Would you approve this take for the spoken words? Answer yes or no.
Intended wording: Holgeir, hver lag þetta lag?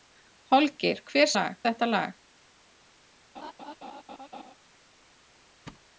yes